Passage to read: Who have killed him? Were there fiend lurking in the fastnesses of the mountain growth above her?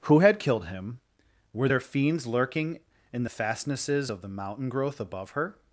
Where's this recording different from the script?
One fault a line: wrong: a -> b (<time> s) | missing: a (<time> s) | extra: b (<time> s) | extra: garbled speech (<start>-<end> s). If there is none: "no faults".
wrong: have -> had (0.2 s)
wrong: fiend -> fiends (1.8 s)